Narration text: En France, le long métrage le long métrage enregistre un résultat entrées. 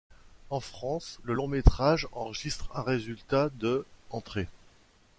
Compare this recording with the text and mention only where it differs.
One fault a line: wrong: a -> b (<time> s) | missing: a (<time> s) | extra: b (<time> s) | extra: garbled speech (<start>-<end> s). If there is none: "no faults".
missing: le long métrage (2.1 s)
extra: de (3.6 s)